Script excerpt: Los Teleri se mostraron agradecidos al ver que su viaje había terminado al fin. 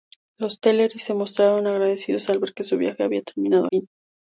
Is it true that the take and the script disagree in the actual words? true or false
true